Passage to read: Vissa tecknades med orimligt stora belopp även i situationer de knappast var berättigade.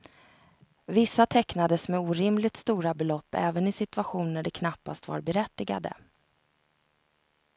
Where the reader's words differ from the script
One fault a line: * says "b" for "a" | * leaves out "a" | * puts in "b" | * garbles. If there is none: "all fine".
all fine